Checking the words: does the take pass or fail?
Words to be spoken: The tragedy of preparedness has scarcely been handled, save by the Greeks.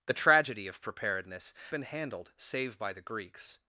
fail